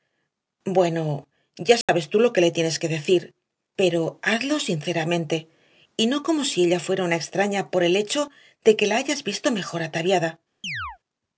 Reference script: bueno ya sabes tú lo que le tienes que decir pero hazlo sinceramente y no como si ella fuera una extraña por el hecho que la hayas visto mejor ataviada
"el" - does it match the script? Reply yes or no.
yes